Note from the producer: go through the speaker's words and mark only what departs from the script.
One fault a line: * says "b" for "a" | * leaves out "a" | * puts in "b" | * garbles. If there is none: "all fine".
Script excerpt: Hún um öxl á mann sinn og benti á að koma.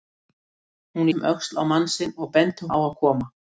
all fine